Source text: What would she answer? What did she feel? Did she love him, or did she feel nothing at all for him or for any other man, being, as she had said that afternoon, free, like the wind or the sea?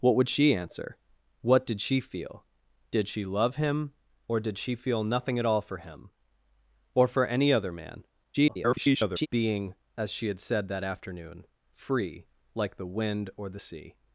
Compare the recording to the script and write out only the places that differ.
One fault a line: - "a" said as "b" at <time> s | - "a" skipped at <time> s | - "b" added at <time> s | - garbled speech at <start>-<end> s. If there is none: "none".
- garbled speech at 8.3-9.3 s